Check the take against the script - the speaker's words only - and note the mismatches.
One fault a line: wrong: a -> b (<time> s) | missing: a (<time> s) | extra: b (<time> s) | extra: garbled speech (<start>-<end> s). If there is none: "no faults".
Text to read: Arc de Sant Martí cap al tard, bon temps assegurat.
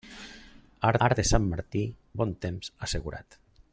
extra: arc (1.1 s)
missing: cap al tard (1.8 s)